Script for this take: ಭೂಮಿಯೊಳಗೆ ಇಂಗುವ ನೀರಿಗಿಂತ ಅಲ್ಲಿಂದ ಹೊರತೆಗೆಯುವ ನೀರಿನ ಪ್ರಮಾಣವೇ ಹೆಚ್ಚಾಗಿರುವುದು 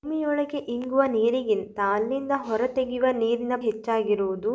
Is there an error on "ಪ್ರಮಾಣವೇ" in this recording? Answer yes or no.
yes